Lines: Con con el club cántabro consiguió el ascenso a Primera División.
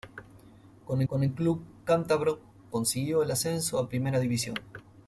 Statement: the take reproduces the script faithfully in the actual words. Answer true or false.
true